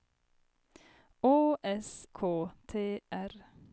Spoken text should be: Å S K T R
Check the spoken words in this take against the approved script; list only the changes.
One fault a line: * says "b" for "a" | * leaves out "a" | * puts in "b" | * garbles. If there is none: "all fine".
all fine